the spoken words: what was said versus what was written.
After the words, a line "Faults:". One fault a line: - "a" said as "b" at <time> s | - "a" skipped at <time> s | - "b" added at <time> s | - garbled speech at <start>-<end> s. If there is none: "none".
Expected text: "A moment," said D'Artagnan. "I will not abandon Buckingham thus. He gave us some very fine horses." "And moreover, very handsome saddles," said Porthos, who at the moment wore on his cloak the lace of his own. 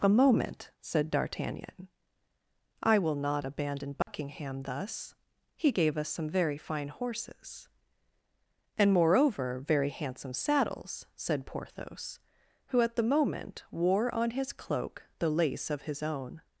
"A moment," said D'Artagnan. "I will not abandon Buckingham thus. He gave us some very fine horses." "And moreover, very handsome saddles," said Porthos, who at the moment wore on his cloak the lace of his own.
Faults:
none